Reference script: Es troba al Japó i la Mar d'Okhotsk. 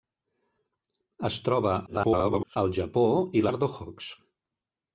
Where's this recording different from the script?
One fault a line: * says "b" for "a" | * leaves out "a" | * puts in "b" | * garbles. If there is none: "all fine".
* garbles
* leaves out "la"